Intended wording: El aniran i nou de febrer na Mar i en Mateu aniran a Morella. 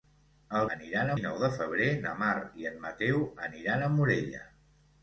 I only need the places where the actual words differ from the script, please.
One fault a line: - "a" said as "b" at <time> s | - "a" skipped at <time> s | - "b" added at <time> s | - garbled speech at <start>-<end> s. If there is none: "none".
none